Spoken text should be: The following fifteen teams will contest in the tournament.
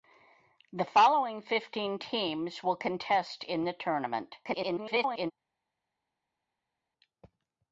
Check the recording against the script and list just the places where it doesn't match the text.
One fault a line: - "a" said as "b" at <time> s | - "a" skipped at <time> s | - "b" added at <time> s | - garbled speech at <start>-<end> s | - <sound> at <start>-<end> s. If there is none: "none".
- garbled speech at 4.4-5.3 s